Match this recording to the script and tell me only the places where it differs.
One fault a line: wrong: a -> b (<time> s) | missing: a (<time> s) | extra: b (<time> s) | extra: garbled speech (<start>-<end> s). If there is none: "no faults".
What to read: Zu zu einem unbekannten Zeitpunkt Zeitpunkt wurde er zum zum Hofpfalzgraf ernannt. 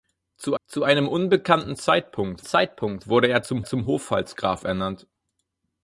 no faults